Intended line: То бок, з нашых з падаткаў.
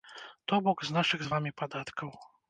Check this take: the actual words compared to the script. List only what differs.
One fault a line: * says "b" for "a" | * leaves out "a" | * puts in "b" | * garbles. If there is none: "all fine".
* puts in "вамі"